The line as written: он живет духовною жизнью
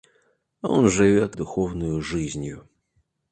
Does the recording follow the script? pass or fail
pass